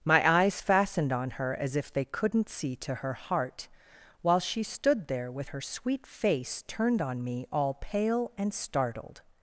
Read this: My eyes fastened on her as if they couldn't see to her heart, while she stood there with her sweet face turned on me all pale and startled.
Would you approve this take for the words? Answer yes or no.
yes